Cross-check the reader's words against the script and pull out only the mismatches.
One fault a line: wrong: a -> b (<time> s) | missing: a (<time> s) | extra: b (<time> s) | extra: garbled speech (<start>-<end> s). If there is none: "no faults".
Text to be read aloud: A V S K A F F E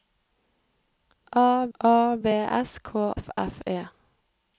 extra: a (1.8 s)
missing: A (3.1 s)